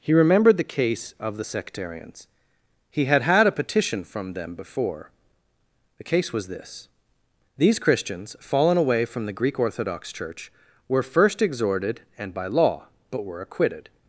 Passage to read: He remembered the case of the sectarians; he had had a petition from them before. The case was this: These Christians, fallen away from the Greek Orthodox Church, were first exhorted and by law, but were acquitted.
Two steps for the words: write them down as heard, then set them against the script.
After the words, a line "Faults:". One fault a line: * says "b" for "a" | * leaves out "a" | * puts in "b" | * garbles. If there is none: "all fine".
He remembered the case of the sectarians; he had had a petition from them before. The case was this: These Christians, fallen away from the Greek Orthodox Church, were first exhorted and by law, but were acquitted.
Faults:
all fine